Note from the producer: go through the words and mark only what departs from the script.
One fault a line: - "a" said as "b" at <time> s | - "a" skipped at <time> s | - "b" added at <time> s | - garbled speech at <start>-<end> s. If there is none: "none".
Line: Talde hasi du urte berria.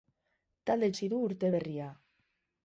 none